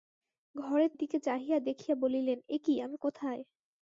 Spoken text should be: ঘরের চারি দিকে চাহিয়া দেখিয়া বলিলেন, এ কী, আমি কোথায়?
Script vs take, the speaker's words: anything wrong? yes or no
yes